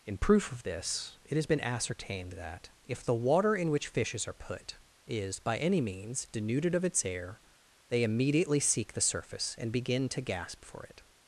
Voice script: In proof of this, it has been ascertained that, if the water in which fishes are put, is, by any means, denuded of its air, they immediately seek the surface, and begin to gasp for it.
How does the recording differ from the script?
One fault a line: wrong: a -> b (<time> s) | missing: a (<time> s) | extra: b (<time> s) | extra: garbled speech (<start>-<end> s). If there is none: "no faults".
no faults